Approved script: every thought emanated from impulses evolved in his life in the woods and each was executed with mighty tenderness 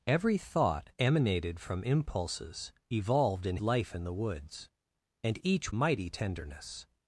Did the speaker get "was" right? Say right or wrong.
wrong